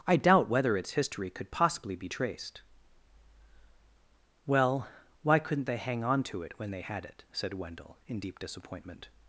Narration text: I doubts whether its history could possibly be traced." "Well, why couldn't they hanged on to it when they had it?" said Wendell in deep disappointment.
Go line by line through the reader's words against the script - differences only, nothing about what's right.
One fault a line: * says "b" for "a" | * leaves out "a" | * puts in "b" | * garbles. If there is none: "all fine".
* says "doubt" for "doubts"
* says "hang" for "hanged"